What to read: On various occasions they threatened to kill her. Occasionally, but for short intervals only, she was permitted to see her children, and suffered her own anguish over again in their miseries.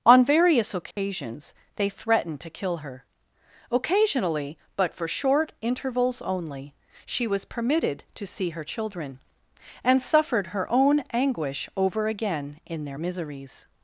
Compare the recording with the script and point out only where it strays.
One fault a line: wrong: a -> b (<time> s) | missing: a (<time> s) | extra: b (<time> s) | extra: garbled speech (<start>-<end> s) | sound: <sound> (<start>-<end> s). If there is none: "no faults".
sound: dropout (0.9-1.0 s)